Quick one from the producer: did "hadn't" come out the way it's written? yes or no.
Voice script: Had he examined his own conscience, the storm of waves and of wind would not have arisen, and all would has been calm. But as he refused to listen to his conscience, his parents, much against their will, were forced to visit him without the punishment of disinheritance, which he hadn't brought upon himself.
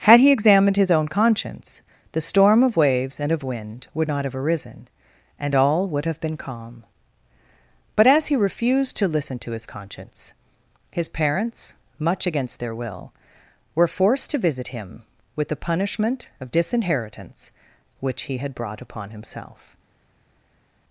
no